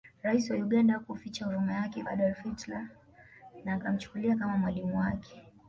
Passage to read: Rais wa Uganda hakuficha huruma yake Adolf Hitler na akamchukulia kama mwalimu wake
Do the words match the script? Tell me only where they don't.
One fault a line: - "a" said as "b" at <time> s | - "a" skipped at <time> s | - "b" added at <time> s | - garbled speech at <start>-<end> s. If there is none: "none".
none